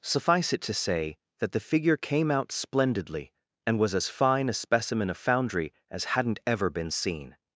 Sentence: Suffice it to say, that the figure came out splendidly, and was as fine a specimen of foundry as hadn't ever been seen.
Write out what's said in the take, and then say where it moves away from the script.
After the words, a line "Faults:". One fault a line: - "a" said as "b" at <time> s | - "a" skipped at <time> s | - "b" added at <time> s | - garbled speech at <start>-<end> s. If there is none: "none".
Suffice it to say, that the figure came out splendidly, and was as fine a specimen of foundry as hadn't ever been seen.
Faults:
none